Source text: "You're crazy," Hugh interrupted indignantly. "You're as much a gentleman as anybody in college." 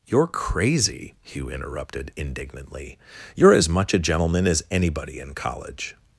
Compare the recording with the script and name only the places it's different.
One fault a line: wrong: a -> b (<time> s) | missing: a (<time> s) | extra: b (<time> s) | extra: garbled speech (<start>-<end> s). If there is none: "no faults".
no faults